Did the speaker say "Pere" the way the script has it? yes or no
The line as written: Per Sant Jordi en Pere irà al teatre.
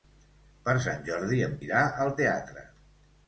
no